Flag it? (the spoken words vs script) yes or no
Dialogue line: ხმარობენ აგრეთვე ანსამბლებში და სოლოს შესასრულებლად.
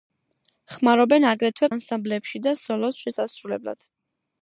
no